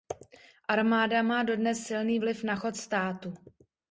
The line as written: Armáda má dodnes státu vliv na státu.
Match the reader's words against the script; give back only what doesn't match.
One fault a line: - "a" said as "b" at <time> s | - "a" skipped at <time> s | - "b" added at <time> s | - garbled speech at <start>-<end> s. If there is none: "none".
- "státu" said as "silný" at 1.8 s
- "chod" added at 2.5 s